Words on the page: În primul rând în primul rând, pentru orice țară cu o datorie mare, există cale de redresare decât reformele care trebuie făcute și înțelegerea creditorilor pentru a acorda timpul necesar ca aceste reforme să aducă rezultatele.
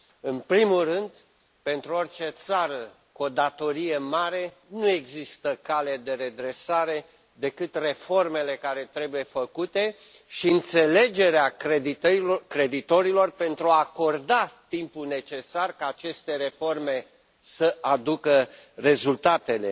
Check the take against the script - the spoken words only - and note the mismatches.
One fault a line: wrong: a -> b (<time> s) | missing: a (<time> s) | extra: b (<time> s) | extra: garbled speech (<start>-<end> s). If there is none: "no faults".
missing: în primul rând (1.1 s)
extra: nu (4.7 s)